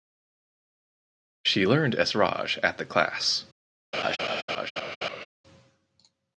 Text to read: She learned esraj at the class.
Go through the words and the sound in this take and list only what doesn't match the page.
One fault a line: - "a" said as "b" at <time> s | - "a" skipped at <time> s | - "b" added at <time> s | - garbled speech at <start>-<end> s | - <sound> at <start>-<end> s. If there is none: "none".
- laugh at 3.9-5.3 s